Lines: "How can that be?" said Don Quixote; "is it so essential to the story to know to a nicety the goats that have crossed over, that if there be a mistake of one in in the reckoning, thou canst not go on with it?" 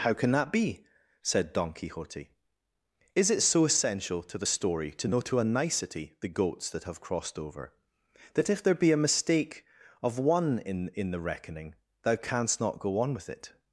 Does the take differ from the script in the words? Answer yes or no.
no